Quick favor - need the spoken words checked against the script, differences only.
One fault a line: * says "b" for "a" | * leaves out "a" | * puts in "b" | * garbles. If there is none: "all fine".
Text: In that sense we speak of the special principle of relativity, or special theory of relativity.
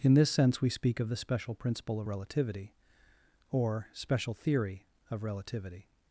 * says "this" for "that"